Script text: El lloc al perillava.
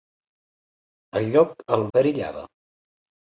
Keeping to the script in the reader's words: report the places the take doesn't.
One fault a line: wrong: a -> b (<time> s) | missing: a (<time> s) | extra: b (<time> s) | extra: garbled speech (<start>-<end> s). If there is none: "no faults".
no faults